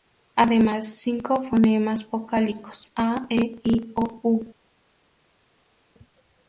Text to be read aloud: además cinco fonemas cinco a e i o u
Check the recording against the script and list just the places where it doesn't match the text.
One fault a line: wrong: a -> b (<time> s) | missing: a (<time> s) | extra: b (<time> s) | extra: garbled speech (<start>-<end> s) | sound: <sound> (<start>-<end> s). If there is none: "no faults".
wrong: cinco -> vocálicos (2.1 s)